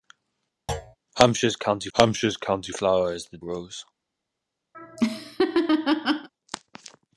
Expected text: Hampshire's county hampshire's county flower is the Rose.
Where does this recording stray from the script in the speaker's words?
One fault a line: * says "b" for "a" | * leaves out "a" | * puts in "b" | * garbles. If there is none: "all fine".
all fine